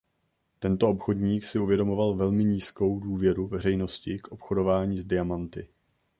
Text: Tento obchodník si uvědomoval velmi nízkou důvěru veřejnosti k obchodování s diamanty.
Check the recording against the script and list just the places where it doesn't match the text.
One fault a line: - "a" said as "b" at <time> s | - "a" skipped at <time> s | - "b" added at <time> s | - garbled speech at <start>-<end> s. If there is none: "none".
none